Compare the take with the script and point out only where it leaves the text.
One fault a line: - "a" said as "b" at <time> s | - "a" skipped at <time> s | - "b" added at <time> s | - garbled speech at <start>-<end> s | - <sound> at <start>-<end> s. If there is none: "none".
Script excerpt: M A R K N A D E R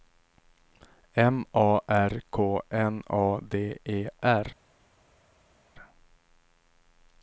none